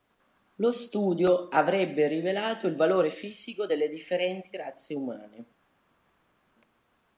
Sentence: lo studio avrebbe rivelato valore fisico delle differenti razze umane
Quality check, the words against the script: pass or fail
fail